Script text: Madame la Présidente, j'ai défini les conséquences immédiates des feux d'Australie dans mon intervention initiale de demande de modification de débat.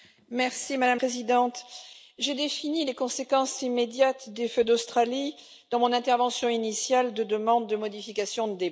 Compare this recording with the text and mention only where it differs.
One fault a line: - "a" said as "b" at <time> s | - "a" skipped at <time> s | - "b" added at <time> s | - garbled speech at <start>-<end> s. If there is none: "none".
- "la" skipped at 1.0 s